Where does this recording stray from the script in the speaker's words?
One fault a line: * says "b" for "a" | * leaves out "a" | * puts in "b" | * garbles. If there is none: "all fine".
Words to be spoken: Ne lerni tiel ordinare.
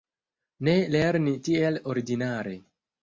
all fine